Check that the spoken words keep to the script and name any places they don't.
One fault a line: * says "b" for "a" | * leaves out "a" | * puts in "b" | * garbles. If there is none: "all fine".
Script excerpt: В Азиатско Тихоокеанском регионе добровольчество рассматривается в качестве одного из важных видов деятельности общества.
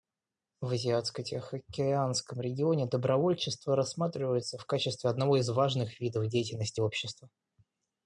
all fine